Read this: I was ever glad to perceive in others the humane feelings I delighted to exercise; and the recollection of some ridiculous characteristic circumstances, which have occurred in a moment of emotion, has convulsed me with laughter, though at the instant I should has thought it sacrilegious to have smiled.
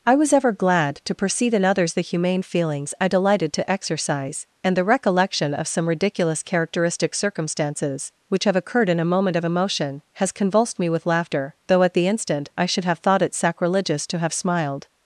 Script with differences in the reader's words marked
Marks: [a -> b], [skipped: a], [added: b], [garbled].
I was ever glad to perceive in others the humane feelings I delighted to exercise; and the recollection of some ridiculous characteristic circumstances, which have occurred in a moment of emotion, has convulsed me with laughter, though at the instant I should [has -> have] thought it sacrilegious to have smiled.